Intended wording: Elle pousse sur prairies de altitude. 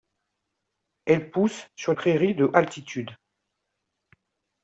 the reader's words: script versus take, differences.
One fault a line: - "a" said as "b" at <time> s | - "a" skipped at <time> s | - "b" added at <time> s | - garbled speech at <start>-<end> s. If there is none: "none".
none